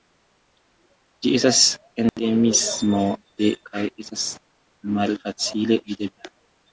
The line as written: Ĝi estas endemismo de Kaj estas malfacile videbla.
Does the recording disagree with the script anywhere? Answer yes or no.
no